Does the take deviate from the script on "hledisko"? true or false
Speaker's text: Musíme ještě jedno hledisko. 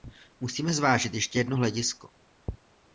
false